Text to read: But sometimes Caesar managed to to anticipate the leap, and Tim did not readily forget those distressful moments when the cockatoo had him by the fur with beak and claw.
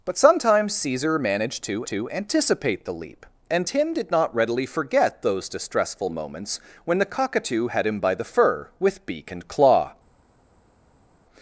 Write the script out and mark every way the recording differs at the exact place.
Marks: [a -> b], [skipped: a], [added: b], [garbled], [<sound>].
But sometimes Caesar managed to to anticipate the leap, and Tim did not readily forget those distressful moments when the cockatoo had him by the fur with beak and claw.